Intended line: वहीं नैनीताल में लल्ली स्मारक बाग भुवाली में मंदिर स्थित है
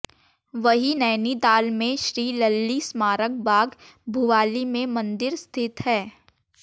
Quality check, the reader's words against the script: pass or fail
fail